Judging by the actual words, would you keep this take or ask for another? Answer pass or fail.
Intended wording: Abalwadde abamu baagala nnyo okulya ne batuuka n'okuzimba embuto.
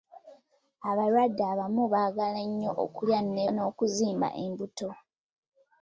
fail